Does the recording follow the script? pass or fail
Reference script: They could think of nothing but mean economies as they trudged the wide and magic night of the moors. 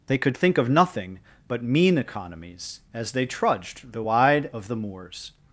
fail